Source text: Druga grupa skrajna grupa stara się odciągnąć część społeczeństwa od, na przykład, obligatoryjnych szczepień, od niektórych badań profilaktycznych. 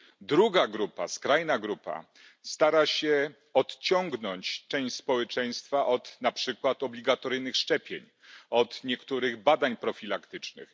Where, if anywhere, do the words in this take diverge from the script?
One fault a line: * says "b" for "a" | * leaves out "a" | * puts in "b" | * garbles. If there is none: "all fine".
all fine